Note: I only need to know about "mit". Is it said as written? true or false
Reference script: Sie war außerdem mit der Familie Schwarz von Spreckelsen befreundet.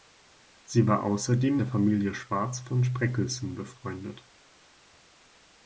false